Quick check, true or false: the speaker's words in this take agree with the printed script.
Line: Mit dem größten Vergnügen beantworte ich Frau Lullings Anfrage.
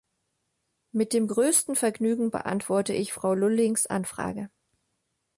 true